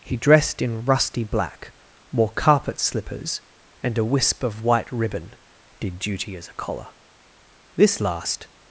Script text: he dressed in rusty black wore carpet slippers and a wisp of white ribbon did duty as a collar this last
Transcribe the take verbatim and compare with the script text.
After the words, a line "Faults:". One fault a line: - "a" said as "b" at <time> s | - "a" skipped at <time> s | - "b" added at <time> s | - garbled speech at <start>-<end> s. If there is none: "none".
he dressed in rusty black wore carpet slippers and a wisp of white ribbon did duty as a collar this last
Faults:
none